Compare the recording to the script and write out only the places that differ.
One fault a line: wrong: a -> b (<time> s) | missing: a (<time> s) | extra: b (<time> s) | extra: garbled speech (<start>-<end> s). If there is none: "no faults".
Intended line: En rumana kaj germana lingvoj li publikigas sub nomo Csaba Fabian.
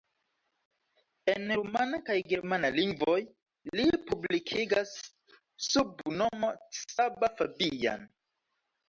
no faults